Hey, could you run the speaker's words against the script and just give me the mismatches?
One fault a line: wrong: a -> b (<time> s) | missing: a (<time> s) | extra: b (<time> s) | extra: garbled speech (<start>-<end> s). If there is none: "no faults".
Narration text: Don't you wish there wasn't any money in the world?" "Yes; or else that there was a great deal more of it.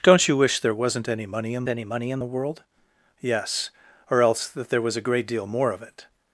extra: any money in (1.7 s)